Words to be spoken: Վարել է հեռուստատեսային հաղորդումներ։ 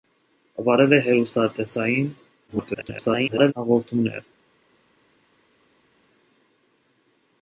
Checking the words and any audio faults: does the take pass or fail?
fail